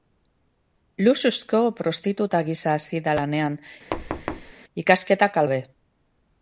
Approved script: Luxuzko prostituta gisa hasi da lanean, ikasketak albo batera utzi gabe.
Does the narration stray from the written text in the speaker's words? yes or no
yes